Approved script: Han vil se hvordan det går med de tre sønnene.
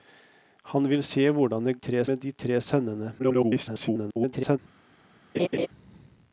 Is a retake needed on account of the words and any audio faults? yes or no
yes